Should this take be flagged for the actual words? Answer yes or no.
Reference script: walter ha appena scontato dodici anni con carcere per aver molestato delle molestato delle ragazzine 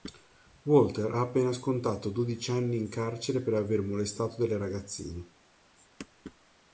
yes